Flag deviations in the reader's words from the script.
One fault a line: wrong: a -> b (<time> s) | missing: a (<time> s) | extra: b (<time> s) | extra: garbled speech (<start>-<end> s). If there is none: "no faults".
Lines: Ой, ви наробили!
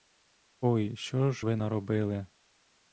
extra: що ж (0.9 s)